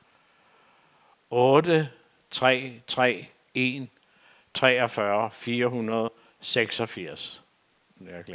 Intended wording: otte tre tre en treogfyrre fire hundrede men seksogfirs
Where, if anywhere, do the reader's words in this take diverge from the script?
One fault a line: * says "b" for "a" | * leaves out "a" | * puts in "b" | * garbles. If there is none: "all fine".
* says "og" for "men"